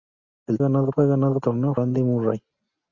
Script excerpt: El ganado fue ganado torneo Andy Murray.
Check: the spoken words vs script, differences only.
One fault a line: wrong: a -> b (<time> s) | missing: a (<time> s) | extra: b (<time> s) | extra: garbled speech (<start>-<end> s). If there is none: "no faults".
no faults